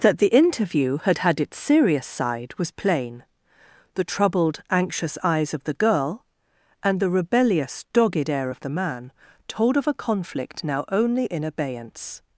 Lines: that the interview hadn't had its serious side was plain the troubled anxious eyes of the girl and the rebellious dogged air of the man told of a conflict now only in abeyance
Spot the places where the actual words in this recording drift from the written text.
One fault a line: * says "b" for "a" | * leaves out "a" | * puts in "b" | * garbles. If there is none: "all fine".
* says "had" for "hadn't"